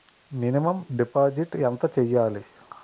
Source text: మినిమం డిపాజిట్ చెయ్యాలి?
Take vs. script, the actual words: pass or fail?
fail